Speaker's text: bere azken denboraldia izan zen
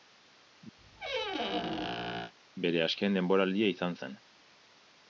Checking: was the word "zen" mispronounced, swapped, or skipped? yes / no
no